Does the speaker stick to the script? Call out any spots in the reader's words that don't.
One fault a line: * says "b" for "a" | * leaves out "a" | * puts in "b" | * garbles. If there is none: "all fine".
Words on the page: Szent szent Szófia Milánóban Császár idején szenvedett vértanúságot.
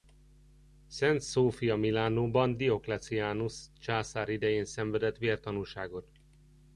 * leaves out "szent"
* puts in "Diocletianus"